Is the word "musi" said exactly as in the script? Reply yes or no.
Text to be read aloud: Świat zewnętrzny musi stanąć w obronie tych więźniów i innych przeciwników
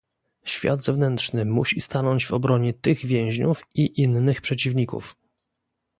yes